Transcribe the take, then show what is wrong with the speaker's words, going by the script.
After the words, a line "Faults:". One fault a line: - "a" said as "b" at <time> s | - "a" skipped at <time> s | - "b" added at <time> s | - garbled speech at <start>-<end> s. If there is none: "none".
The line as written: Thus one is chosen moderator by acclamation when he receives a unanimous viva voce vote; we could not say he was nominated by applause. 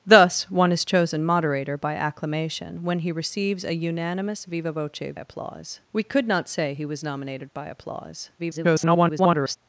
Thus one is chosen moderator by acclamation when he receives a unanimous viva voce applause; we could not say he was nominated by applause. [garbled]
Faults:
- "vote" said as "applause" at 5.2 s
- garbled speech at 8.4-9.6 s